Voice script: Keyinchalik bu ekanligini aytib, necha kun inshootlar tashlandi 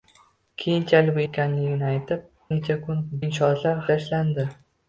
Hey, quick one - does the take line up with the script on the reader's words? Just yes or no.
yes